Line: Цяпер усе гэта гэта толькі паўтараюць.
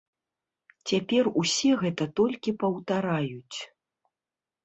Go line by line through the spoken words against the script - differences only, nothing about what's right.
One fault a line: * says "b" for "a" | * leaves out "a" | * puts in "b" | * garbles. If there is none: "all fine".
* leaves out "гэта"